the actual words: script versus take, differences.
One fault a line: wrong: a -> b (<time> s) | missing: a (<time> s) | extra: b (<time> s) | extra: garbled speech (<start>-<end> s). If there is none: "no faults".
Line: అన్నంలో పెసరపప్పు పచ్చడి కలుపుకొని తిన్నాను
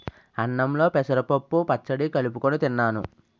no faults